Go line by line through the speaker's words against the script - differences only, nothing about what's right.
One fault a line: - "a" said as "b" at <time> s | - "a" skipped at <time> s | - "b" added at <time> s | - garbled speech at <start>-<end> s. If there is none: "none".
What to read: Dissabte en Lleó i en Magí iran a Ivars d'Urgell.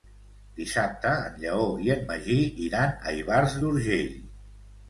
none